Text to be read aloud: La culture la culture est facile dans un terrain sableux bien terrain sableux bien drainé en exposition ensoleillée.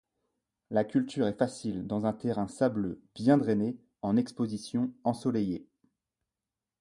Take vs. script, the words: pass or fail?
fail